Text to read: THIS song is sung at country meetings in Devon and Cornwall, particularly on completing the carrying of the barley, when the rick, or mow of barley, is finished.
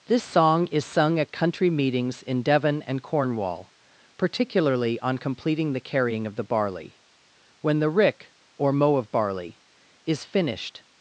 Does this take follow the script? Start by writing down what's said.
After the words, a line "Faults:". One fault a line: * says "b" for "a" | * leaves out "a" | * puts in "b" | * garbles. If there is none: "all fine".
THIS song is sung at country meetings in Devon and Cornwall, particularly on completing the carrying of the barley, when the rick, or mow of barley, is finished.
Faults:
all fine